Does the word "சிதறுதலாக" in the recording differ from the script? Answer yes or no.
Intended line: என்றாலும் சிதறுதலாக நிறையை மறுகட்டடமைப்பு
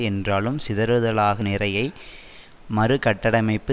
no